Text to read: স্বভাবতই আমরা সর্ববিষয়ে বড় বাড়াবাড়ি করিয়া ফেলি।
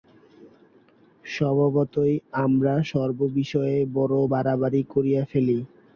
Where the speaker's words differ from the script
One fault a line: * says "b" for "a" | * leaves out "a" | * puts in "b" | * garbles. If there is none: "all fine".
all fine